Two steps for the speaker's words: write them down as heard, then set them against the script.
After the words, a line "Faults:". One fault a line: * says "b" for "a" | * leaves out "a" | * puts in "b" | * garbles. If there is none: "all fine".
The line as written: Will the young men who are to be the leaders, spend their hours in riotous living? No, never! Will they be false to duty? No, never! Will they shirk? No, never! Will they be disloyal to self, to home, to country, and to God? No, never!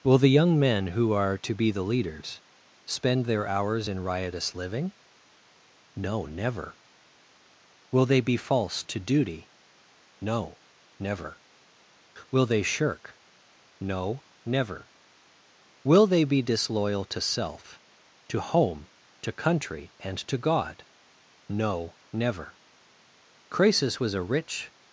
Will the young men who are to be the leaders, spend their hours in riotous living? No, never! Will they be false to duty? No, never! Will they shirk? No, never! Will they be disloyal to self, to home, to country, and to God? No, never! Croesus was a rich
Faults:
* puts in "Croesus was a rich"